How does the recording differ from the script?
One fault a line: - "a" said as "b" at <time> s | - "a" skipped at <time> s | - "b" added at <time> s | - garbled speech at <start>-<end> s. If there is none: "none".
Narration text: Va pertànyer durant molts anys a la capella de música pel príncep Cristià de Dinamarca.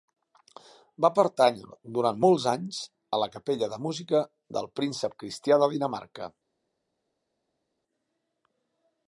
- "pel" said as "del" at 4.6 s